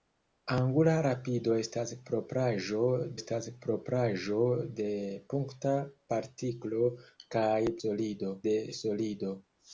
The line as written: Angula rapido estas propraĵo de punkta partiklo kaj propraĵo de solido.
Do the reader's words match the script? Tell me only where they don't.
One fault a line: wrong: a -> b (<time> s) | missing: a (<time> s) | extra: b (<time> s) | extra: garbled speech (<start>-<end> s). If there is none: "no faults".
extra: estas propraĵo (3.2 s)
wrong: propraĵo -> solido (7.8 s)